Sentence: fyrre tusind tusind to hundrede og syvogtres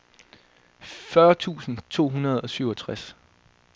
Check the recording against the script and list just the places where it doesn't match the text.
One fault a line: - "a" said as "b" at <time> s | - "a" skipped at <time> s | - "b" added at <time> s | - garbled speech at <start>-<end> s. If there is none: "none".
- "tusind" skipped at 1.8 s